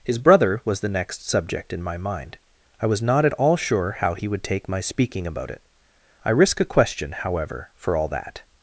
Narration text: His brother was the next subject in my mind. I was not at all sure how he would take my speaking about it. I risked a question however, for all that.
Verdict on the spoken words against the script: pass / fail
fail